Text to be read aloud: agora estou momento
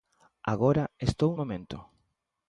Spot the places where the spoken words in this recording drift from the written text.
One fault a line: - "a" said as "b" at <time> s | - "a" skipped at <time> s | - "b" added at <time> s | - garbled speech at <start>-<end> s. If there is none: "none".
none